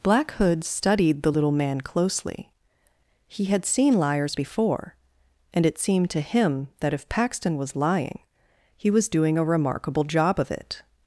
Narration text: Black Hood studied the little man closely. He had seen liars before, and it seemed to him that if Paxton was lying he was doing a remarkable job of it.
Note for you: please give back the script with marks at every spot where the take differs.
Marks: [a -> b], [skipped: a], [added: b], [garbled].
Black Hood studied the little man closely. He had seen liars before, and it seemed to him that if Paxton was lying he was doing a remarkable job of it.